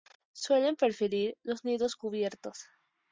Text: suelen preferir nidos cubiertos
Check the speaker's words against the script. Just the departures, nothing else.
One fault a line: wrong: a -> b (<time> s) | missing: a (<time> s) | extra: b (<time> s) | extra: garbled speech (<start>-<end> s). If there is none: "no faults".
extra: los (1.4 s)